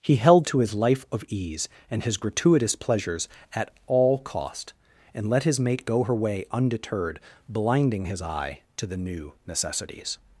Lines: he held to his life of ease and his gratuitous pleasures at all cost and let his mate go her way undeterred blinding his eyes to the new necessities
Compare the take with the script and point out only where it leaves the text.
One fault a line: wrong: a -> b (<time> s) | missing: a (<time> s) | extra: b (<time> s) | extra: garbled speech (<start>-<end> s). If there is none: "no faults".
wrong: eyes -> eye (8.2 s)